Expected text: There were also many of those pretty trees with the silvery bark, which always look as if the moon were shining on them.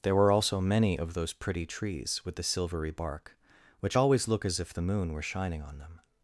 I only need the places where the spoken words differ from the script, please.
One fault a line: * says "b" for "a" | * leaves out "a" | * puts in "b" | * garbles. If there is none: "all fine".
all fine